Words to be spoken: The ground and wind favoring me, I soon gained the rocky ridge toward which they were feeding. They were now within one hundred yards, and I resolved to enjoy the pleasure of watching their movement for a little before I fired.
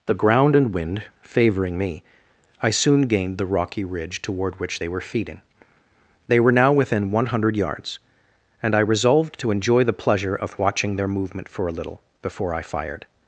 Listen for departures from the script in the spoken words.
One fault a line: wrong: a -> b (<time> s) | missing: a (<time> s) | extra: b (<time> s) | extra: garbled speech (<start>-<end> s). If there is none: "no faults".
no faults